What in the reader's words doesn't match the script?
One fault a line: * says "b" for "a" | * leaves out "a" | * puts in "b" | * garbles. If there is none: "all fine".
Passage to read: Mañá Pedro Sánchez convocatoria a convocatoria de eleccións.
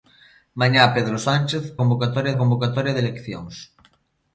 all fine